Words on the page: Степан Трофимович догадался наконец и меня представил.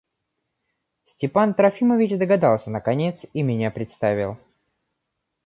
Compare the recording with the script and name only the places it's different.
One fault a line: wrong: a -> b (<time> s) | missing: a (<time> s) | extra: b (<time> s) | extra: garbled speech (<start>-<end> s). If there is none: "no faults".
no faults